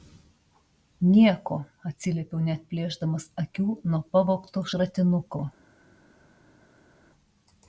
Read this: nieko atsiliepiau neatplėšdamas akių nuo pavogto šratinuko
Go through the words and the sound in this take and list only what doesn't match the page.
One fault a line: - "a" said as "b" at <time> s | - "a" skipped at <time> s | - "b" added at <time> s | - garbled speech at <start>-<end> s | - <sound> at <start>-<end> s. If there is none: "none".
none